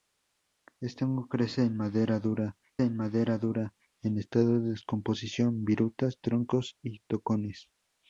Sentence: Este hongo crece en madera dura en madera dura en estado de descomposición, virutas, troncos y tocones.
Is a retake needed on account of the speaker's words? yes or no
no